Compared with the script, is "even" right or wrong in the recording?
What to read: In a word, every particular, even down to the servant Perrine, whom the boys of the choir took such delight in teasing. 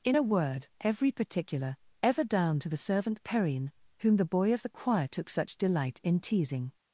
wrong